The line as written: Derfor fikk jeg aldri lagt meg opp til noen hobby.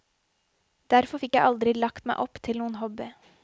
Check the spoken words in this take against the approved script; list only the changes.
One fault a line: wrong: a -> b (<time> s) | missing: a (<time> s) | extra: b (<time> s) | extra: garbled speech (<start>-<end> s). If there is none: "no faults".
no faults